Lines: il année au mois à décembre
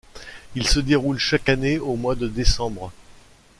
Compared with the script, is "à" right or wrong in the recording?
wrong